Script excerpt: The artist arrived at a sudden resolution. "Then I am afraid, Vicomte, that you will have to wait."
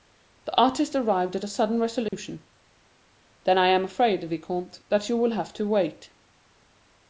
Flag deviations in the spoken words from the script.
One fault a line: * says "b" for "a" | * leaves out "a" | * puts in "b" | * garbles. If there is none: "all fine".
all fine